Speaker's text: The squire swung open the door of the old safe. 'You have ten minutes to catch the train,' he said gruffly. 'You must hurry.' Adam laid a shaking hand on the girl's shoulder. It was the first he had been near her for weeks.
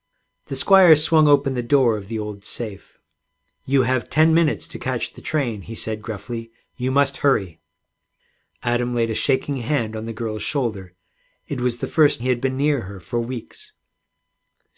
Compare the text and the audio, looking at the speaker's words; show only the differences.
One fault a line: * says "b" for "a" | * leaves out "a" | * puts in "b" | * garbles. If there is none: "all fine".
all fine